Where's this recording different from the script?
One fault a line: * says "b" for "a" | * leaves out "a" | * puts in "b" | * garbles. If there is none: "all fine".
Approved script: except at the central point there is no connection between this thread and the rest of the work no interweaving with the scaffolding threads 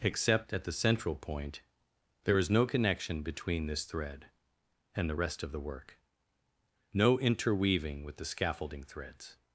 all fine